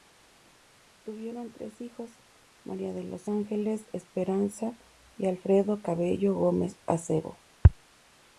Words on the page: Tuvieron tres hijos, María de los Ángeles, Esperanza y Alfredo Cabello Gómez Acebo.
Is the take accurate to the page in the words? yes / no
yes